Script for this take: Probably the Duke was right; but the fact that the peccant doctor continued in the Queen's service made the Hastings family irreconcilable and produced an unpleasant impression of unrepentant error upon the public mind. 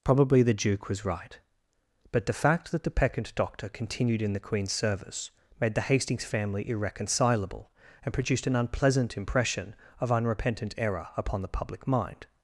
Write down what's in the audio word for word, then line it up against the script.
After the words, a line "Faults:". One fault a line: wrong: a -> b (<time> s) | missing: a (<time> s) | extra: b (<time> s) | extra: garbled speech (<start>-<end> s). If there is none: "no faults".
Probably the Duke was right; but the fact that the peccant doctor continued in the Queen's service made the Hastings family irreconcilable and produced an unpleasant impression of unrepentant error upon the public mind.
Faults:
no faults